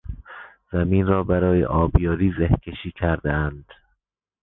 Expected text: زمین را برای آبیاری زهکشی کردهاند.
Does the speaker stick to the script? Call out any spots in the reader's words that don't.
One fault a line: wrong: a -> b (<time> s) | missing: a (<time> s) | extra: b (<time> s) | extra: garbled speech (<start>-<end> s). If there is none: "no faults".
no faults